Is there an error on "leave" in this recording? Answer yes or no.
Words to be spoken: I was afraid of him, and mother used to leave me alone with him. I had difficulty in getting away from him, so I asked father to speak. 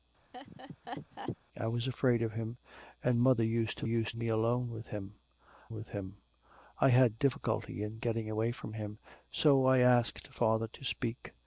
yes